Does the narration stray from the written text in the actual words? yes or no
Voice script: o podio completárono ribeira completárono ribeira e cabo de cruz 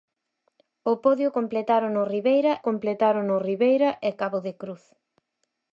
no